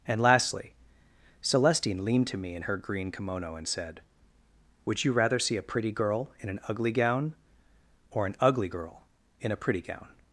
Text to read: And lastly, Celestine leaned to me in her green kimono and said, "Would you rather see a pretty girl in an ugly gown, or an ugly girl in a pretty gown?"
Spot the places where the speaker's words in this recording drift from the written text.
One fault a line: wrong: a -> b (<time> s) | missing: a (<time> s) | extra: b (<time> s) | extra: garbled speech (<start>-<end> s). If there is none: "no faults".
no faults